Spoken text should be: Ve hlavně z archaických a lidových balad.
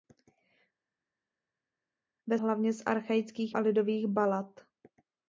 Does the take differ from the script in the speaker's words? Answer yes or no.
no